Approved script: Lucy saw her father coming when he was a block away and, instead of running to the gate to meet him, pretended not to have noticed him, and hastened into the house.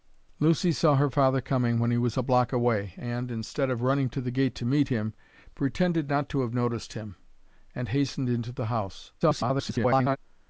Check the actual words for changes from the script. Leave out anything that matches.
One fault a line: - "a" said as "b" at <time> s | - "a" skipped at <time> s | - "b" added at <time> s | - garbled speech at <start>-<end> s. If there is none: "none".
- garbled speech at 9.2-10.2 s